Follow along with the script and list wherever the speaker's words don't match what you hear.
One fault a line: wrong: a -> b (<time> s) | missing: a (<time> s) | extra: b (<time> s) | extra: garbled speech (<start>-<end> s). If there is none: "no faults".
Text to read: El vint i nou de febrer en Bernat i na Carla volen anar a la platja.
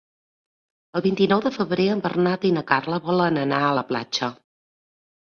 no faults